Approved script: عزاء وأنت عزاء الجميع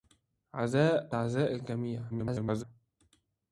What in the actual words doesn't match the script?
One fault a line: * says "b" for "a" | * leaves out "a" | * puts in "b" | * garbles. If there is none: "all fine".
* leaves out "وأنت"
* garbles